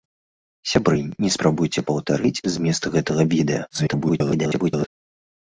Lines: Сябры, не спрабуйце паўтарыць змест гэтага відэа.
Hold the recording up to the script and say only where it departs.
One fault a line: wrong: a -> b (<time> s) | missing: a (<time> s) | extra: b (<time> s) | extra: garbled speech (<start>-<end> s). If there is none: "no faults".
extra: garbled speech (3.7-4.9 s)